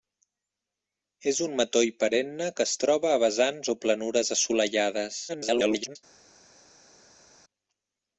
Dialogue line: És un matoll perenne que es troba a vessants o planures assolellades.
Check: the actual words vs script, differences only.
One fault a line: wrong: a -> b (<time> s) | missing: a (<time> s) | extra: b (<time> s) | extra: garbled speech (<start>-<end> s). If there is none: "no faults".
extra: garbled speech (5.3-6.0 s)